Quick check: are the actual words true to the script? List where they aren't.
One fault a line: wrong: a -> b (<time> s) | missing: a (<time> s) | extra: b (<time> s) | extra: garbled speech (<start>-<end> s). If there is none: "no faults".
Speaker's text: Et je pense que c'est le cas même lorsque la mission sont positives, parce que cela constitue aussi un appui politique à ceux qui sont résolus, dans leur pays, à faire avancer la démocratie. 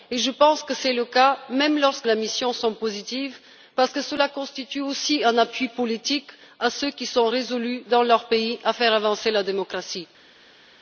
no faults